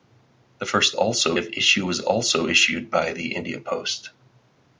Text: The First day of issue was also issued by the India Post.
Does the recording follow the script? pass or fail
fail